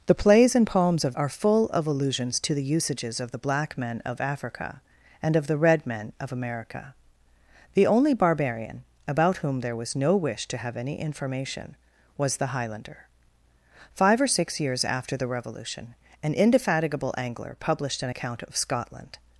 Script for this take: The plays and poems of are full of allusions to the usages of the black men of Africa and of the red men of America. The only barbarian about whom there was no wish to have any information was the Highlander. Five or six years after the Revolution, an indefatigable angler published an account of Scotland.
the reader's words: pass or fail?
pass